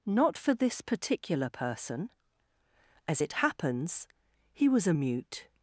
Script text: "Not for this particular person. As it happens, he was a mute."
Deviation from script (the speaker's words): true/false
false